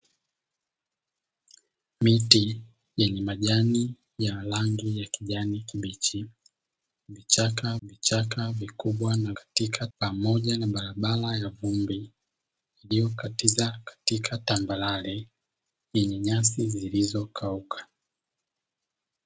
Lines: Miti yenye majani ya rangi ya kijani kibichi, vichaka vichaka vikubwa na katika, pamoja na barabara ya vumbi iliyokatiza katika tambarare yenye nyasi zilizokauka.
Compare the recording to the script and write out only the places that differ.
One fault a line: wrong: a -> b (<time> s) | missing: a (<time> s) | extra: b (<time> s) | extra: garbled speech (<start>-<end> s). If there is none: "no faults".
no faults